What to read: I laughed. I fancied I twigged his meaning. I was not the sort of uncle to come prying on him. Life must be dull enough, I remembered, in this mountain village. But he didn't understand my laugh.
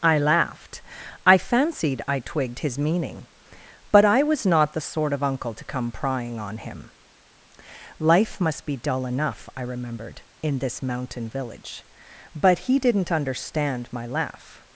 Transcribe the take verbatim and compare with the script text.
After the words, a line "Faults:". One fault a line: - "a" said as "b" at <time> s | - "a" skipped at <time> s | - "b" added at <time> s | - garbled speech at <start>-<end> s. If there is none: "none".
I laughed. I fancied I twigged his meaning. But I was not the sort of uncle to come prying on him. Life must be dull enough, I remembered, in this mountain village. But he didn't understand my laugh.
Faults:
- "But" added at 3.9 s